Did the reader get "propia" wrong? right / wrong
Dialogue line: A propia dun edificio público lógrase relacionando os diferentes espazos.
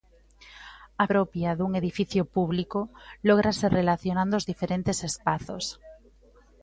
right